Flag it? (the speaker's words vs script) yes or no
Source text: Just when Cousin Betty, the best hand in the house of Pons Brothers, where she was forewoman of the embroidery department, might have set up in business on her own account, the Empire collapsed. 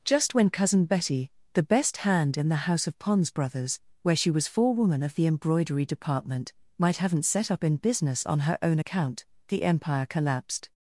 yes